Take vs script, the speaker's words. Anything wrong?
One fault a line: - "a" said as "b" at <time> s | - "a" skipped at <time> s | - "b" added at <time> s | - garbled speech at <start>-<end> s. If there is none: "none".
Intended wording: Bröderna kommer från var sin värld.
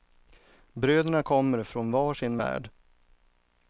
none